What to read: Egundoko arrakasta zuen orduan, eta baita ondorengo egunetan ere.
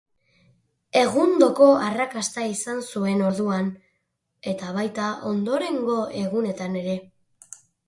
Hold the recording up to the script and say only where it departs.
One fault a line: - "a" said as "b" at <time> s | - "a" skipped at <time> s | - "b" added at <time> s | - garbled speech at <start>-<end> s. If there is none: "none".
- "izan" added at 2.5 s